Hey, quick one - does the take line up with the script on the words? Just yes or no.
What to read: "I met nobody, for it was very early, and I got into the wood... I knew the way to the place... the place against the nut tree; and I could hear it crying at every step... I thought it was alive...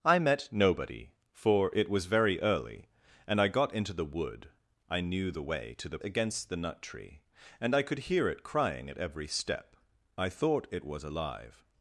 no